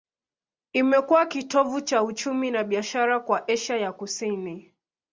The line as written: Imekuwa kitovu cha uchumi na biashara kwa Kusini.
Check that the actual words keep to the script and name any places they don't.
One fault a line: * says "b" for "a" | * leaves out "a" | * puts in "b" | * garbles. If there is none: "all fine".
* puts in "Asia ya"